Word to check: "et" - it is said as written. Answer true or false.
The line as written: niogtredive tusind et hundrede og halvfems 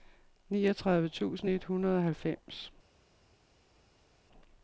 true